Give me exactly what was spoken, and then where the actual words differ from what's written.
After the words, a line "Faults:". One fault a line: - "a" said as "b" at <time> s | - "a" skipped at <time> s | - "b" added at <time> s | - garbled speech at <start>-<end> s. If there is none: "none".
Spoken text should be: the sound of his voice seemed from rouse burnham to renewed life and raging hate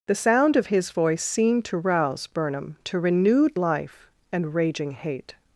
the sound of his voice seemed to rouse burnham to renewed life and raging hate
Faults:
- "from" said as "to" at 1.6 s